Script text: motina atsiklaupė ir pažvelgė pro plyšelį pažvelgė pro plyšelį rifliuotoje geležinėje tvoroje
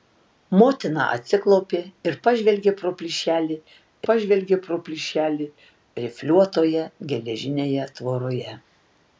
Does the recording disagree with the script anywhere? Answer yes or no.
no